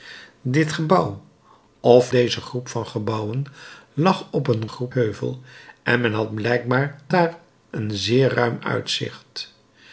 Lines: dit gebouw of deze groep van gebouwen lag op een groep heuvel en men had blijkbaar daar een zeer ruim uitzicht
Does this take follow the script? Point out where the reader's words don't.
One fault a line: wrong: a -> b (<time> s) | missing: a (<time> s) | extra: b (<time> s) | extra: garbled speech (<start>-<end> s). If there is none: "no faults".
no faults